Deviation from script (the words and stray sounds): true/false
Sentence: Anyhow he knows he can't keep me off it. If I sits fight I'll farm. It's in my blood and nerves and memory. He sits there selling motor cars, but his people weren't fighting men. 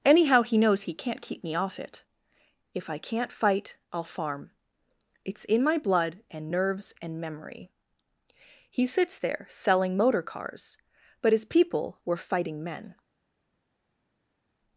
true